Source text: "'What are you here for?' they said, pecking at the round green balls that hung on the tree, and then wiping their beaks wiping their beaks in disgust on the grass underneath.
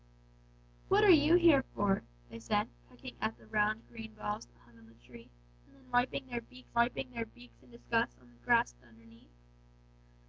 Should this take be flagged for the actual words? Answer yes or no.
no